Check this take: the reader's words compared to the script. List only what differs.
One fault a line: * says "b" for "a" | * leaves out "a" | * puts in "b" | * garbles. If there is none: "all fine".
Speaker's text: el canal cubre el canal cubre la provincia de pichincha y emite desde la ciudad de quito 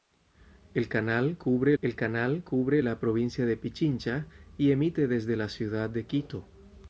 all fine